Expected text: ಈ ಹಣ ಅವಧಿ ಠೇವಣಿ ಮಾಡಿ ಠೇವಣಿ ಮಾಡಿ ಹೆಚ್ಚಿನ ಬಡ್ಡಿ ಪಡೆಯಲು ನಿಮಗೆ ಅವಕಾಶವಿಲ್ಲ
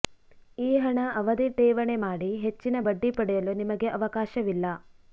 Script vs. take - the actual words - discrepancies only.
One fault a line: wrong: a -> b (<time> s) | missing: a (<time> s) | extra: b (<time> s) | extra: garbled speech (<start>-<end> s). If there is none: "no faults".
missing: ಠೇವಣಿ ಮಾಡಿ (2.3 s)